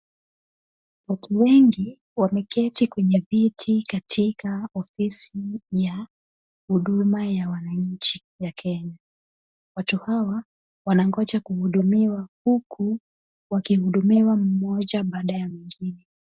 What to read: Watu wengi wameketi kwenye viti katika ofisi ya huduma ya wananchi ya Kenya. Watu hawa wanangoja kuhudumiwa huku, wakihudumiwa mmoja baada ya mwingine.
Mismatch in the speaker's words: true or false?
false